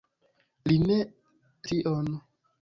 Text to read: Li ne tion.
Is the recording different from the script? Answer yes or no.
no